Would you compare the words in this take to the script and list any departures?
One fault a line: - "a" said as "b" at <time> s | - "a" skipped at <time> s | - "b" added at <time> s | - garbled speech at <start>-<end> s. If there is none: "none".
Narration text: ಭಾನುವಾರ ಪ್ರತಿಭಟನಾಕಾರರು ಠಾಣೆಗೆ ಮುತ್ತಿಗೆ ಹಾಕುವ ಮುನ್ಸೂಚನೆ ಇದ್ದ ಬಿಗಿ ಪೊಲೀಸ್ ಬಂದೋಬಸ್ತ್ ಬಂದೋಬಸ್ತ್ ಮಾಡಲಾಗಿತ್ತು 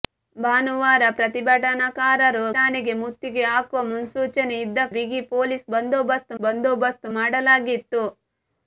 none